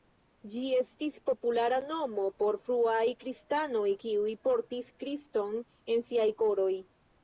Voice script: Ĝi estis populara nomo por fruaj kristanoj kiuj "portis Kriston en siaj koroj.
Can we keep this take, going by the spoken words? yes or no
yes